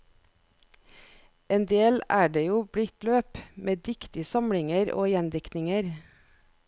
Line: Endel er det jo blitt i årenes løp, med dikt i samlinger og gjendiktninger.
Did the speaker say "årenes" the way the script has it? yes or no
no